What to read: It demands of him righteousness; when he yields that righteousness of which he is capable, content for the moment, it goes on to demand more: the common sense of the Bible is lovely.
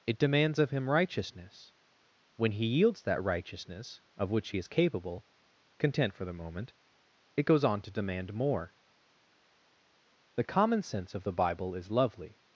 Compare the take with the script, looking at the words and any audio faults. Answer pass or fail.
pass